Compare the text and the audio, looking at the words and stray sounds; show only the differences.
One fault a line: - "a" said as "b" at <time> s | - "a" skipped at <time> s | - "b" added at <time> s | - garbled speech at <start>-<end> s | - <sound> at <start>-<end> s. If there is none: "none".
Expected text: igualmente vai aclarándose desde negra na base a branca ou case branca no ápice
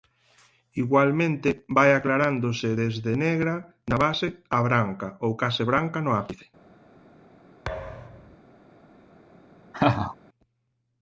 - thud at 7.7-8.4 s
- laugh at 9.7-10.2 s